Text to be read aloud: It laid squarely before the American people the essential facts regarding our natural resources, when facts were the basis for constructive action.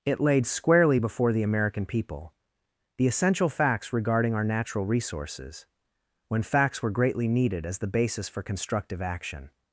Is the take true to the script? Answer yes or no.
no